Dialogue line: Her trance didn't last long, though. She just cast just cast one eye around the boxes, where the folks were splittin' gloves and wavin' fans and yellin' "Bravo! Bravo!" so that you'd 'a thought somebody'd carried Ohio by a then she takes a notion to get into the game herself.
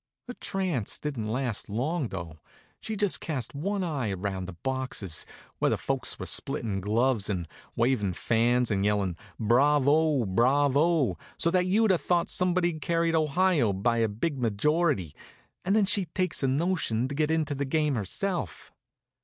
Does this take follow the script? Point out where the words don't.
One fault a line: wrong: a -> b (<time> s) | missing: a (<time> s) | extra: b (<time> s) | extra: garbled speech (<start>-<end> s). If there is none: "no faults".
missing: just cast (3.5 s)
extra: big majority and (14.1 s)